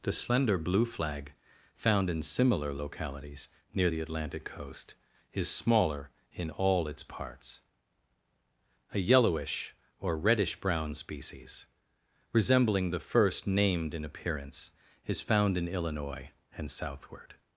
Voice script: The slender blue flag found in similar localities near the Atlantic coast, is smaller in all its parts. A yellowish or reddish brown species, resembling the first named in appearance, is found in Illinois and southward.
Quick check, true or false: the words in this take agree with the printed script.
true